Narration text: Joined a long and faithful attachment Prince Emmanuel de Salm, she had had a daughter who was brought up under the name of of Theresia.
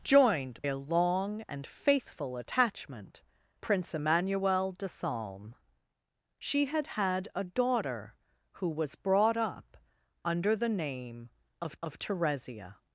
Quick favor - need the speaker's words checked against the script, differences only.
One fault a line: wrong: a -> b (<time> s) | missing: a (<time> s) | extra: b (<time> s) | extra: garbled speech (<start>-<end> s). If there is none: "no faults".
no faults